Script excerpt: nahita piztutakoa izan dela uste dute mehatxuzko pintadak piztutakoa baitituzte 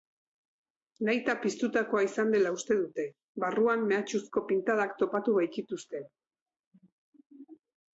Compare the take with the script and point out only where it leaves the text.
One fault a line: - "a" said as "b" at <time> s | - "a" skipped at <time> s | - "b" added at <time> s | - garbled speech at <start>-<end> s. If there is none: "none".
- "barruan" added at 3.5 s
- "piztutakoa" said as "topatu" at 5.0 s